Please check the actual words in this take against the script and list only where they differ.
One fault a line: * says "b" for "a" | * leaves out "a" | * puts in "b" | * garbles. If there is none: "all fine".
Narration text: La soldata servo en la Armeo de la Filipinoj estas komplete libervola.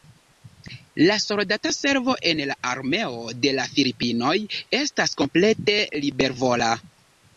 all fine